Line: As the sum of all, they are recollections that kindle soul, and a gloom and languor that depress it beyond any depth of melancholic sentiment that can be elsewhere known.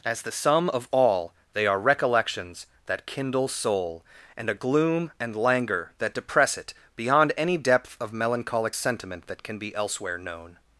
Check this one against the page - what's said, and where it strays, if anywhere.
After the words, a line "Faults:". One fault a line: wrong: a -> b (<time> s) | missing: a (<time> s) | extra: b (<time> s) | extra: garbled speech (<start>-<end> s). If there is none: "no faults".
As the sum of all, they are recollections that kindle soul, and a gloom and languor that depress it beyond any depth of melancholic sentiment that can be elsewhere known.
Faults:
no faults